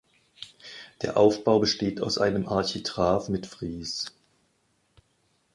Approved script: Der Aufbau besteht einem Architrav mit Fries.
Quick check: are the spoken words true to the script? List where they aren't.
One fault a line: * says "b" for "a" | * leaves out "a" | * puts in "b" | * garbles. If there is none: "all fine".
* puts in "aus"